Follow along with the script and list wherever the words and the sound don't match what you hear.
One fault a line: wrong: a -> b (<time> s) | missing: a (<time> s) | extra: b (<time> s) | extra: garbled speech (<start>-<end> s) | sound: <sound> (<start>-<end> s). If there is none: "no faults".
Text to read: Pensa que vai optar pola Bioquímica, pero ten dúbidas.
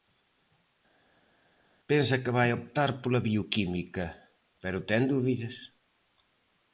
no faults